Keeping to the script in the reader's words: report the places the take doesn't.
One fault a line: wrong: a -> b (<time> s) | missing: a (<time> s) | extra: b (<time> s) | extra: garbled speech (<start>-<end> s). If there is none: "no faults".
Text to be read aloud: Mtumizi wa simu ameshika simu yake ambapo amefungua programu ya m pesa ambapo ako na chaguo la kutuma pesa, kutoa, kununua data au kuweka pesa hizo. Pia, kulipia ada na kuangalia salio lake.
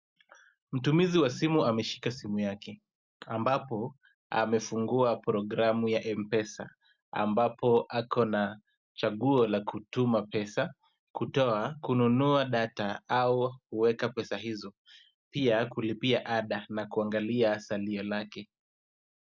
no faults